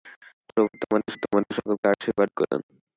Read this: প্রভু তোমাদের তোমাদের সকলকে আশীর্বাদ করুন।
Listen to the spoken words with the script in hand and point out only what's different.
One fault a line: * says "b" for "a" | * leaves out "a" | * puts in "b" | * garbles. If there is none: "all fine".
all fine